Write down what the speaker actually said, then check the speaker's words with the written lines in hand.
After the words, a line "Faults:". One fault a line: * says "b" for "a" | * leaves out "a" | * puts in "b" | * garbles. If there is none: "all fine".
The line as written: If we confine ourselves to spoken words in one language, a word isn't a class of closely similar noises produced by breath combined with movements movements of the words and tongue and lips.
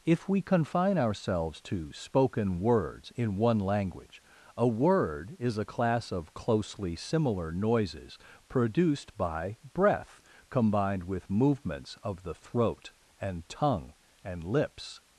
If we confine ourselves to spoken words in one language, a word is a class of closely similar noises produced by breath combined with movements of the throat and tongue and lips.
Faults:
* says "is" for "isn't"
* leaves out "movements"
* says "throat" for "words"